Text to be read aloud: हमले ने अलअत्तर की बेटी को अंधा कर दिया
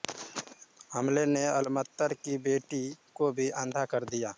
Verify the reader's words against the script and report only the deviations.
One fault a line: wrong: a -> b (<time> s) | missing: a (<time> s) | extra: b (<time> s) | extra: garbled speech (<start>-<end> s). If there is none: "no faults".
extra: भी (3.3 s)